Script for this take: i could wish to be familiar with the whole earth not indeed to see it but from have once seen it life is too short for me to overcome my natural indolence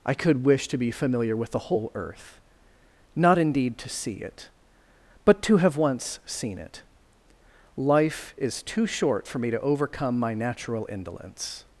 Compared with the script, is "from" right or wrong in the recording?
wrong